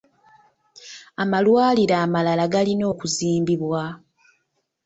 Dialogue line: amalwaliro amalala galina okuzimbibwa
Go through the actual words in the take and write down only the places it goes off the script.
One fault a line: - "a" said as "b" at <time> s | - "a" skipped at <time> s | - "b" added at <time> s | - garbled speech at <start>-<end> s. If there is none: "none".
none